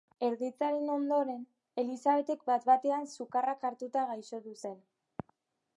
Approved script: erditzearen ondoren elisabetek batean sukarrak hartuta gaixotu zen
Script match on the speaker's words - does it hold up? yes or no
no